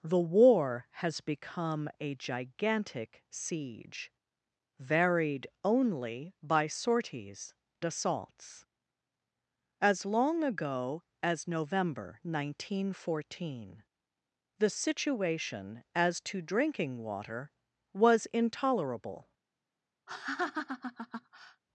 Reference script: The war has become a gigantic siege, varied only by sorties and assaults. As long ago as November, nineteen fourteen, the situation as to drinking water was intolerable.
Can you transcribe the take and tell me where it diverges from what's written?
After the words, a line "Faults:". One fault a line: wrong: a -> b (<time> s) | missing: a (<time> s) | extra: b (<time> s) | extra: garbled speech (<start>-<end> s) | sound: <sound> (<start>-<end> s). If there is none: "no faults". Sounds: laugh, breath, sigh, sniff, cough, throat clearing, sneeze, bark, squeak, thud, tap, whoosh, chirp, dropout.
The war has become a gigantic siege, varied only by sorties assaults. As long ago as November, nineteen fourteen, the situation as to drinking water was intolerable.
Faults:
missing: and (7.5 s)
sound: laugh (20.1-21.6 s)